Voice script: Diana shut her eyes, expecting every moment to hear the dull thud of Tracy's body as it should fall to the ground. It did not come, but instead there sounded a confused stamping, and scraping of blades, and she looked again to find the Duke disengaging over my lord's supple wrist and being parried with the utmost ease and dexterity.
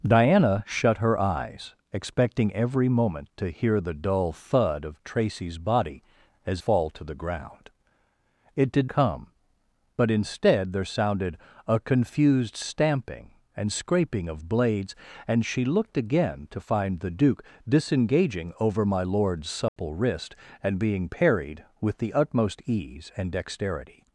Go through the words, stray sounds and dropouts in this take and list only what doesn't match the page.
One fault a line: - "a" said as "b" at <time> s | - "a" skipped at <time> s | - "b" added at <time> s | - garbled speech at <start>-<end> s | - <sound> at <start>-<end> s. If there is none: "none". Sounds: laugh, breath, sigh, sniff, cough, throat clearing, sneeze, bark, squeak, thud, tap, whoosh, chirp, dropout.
- "it should" skipped at 6.6 s
- "not" skipped at 8.9 s
- dropout at 19.7-19.8 s